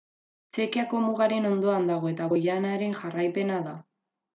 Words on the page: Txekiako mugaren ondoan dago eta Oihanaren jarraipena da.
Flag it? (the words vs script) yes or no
no